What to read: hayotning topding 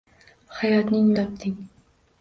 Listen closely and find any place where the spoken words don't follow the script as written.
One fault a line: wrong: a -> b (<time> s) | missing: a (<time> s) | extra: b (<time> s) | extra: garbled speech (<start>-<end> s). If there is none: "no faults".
no faults